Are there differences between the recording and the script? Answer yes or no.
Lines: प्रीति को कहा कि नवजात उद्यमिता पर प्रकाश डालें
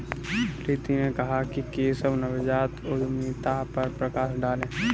yes